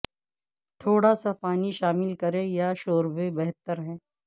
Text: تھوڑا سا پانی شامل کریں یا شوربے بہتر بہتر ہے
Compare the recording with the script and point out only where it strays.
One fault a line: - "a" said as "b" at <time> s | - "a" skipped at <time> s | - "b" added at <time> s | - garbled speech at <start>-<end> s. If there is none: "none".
- "بہتر" skipped at 3.8 s